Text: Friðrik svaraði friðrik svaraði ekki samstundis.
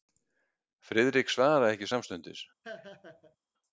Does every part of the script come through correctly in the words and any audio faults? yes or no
no